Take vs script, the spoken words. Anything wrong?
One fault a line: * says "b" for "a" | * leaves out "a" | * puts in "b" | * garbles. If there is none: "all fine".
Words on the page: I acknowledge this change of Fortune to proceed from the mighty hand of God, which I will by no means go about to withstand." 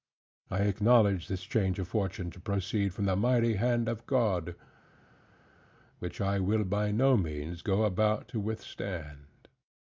all fine